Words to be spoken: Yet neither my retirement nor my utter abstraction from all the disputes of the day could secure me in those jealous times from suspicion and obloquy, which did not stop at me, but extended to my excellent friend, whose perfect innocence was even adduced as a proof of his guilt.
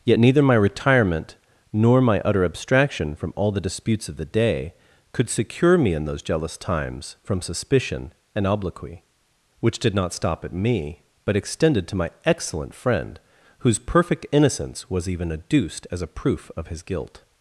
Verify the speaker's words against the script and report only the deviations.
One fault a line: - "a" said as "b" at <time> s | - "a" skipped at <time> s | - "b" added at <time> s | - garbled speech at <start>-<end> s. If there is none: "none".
none